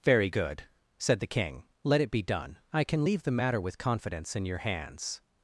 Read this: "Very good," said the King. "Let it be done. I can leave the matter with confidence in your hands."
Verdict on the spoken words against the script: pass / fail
pass